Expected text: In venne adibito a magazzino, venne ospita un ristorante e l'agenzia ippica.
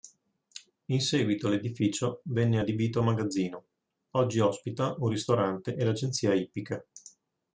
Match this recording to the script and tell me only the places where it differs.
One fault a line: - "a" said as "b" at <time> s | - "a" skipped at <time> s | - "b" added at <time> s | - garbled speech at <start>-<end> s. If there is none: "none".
- "seguito l'edificio" added at 1.0 s
- "venne" said as "oggi" at 4.1 s